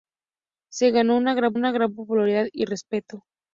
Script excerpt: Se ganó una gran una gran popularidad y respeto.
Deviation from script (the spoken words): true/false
false